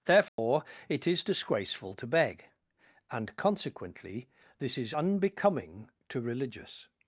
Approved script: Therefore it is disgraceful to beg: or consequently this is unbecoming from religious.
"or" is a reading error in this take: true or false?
true